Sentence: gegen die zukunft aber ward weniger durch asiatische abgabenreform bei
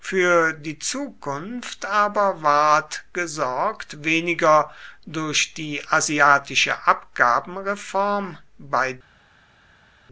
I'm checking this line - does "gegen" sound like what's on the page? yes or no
no